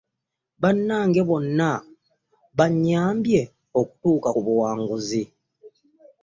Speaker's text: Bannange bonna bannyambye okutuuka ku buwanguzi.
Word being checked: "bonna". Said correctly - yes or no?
yes